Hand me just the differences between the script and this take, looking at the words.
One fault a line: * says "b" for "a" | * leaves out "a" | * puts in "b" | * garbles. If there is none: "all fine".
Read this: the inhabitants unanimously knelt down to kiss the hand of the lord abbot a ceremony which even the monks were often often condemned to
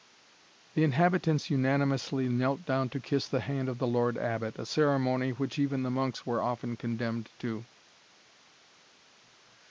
* leaves out "often"